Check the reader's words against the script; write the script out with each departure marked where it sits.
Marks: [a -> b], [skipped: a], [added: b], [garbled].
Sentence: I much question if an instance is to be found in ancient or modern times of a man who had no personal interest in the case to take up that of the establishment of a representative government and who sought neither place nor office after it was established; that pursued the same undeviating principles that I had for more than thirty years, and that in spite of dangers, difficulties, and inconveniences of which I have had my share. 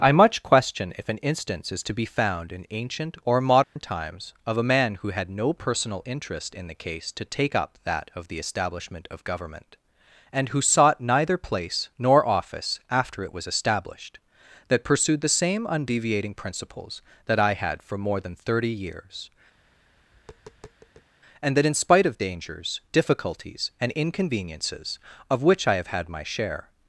I much question if an instance is to be found in ancient or modern times of a man who had no personal interest in the case to take up that of the establishment of [skipped: a representative] government and who sought neither place nor office after it was established; that pursued the same undeviating principles that I had for more than thirty years, and that in spite of dangers, difficulties, and inconveniences of which I have had my share.